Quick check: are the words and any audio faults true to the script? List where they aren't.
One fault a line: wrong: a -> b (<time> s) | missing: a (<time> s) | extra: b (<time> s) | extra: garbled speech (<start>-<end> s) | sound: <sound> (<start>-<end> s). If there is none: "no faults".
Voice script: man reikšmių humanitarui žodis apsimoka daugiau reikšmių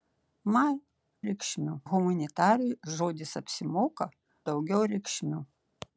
no faults